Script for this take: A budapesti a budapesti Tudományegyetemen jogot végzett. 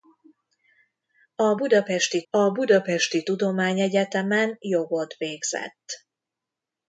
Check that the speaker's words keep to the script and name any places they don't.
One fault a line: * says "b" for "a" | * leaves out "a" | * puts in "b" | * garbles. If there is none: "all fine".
all fine